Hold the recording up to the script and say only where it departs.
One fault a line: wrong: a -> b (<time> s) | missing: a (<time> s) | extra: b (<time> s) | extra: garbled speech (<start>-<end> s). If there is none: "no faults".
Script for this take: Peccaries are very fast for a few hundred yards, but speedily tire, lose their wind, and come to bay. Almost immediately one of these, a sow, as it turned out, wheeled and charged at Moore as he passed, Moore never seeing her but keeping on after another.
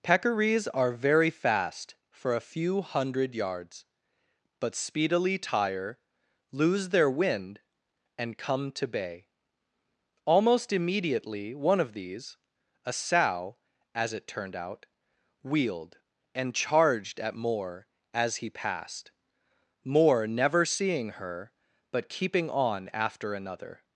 no faults